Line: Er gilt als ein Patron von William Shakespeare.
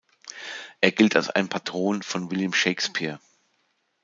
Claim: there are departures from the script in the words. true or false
false